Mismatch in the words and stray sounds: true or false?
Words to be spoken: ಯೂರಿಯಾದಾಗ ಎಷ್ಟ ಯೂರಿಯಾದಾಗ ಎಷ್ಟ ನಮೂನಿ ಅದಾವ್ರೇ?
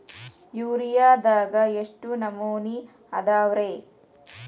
true